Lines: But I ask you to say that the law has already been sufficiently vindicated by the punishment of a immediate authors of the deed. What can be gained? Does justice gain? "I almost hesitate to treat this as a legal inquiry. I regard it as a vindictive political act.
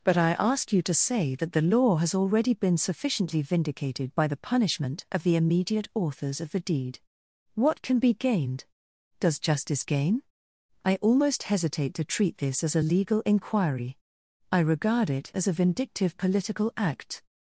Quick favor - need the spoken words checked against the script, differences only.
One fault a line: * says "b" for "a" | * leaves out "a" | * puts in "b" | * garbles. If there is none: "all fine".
* says "the" for "a"